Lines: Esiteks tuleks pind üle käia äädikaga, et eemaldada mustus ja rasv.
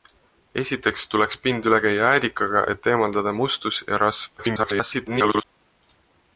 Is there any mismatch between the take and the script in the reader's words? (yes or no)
yes